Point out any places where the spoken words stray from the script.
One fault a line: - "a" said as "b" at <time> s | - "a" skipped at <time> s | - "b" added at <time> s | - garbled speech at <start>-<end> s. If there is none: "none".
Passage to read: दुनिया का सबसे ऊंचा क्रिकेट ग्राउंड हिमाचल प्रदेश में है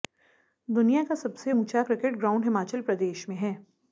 none